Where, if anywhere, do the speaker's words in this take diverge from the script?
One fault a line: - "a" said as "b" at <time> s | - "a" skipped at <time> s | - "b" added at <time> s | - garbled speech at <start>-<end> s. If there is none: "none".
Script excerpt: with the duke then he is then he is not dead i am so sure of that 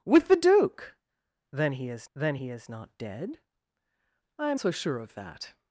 none